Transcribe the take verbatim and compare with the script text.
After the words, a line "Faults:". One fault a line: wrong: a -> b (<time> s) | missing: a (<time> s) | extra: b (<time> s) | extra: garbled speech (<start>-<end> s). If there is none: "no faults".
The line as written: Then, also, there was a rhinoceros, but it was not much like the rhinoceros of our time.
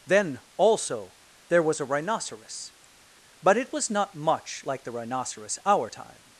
Then, also, there was a rhinoceros, but it was not much like the rhinoceros our time.
Faults:
missing: of (5.6 s)